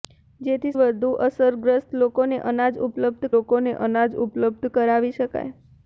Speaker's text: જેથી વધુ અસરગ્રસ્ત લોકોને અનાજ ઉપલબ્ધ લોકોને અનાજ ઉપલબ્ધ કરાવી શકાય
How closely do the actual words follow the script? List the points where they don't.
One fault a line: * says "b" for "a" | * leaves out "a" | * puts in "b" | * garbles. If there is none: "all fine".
all fine